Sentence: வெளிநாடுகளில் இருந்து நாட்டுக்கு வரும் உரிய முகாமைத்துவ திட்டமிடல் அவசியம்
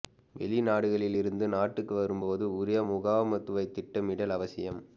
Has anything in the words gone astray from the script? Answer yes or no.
yes